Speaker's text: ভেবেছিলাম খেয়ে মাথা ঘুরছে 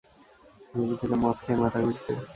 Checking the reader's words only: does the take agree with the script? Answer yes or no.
no